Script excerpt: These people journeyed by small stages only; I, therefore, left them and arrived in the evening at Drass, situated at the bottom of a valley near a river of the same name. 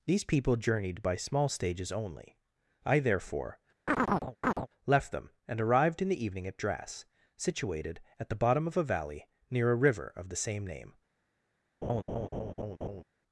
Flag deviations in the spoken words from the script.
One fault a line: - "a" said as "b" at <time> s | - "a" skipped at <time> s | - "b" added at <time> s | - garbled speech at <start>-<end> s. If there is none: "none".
none